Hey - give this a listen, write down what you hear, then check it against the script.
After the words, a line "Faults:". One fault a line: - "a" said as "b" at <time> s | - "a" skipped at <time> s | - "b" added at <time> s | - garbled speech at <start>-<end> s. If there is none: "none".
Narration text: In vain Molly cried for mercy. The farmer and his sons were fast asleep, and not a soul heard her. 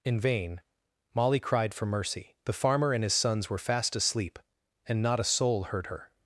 In vain Molly cried for mercy. The farmer and his sons were fast asleep, and not a soul heard her.
Faults:
none